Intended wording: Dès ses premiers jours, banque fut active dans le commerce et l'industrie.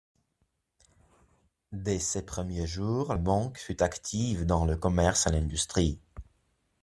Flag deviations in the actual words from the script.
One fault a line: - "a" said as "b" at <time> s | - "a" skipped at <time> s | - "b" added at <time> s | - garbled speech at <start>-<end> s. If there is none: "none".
none